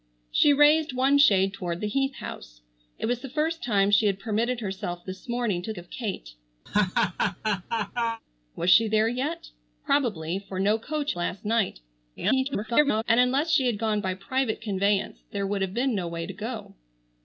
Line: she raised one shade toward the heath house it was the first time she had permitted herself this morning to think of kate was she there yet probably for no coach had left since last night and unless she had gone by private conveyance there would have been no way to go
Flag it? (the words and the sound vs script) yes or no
yes